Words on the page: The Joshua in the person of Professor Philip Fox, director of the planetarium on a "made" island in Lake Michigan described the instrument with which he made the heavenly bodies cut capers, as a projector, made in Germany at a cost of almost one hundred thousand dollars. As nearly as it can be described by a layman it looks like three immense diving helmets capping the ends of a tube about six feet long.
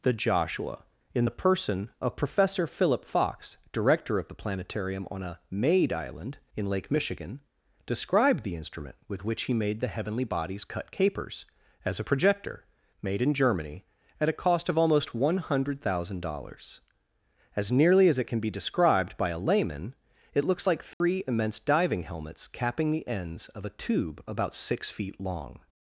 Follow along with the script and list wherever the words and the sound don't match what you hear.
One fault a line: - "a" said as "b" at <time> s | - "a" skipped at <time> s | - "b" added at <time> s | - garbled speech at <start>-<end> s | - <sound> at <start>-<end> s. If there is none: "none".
- dropout at 20.9-21.0 s